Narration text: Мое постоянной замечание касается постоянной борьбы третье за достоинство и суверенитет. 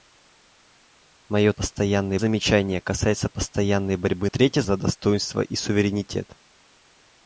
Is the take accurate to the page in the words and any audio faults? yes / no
yes